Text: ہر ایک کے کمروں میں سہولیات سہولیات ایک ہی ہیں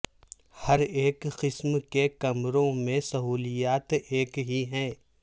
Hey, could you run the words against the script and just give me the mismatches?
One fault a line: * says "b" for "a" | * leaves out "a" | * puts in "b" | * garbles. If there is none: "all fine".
* puts in "قسم"
* leaves out "سہولیات"